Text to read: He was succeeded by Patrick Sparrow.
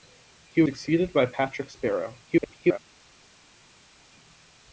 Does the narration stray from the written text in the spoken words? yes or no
yes